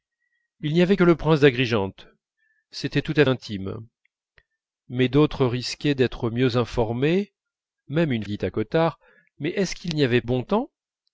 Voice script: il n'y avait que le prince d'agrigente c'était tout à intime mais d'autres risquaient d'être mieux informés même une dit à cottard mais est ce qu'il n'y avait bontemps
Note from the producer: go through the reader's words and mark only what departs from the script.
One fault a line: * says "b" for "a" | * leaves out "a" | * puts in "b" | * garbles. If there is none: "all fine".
all fine